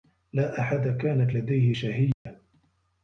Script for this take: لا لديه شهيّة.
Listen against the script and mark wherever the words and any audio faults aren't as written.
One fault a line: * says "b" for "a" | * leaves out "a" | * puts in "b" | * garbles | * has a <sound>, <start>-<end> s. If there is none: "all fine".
* puts in "أحد كانت"
* has a dropout, 2.1-2.3 s